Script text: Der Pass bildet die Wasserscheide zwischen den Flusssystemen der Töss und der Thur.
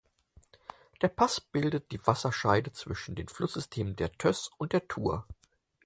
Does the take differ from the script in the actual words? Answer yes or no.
no